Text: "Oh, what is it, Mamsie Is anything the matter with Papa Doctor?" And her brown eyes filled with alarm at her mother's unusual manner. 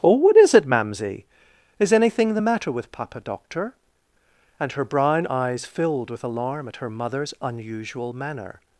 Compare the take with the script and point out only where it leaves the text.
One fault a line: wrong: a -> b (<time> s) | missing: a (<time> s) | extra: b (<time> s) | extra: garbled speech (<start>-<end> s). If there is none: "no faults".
no faults